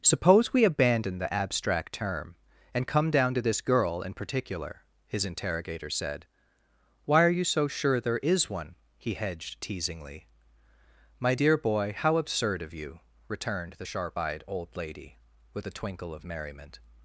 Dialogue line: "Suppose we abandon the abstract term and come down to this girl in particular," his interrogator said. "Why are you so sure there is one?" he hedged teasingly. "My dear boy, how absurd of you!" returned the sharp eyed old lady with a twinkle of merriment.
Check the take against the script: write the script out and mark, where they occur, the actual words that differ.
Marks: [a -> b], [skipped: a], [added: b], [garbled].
"Suppose we abandon the abstract term and come down to this girl in particular," his interrogator said. "Why are you so sure there is one?" he hedged teasingly. "My dear boy, how absurd of you!" returned the sharp eyed old lady with a twinkle of merriment.